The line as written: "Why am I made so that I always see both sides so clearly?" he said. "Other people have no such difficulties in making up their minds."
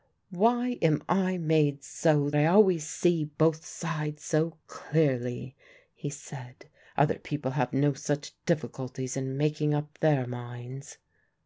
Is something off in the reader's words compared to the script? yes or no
yes